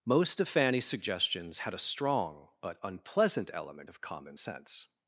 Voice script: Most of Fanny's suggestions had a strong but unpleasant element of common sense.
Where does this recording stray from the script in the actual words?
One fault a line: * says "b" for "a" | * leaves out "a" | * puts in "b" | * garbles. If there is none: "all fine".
all fine